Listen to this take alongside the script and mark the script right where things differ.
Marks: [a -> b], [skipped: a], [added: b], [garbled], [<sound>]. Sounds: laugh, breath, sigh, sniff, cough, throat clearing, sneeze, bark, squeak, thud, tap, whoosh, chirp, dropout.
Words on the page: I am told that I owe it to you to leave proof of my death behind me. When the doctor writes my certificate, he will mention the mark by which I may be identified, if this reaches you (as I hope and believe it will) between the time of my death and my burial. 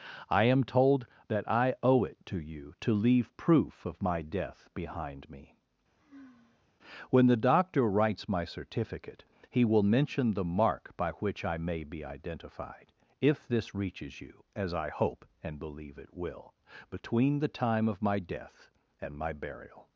I am told that I owe it to you to leave proof of my death behind me. [sigh] When the doctor writes my certificate, he will mention the mark by which I may be identified, if this reaches you (as I hope and believe it will) between the time of my death and my burial.